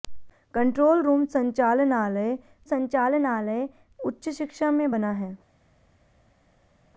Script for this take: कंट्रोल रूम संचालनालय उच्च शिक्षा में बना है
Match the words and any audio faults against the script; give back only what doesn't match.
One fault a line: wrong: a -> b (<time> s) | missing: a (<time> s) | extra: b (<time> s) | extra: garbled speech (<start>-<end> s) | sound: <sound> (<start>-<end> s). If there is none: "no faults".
extra: संचालनालय (2.6 s)